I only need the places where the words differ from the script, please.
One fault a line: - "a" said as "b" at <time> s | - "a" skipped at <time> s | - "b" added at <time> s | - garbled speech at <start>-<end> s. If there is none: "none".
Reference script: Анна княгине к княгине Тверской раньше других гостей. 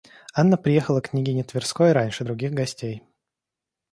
- "княгине" said as "приехала" at 0.6 s